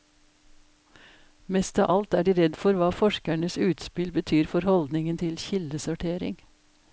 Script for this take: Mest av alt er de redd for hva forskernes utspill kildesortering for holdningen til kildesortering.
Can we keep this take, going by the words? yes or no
no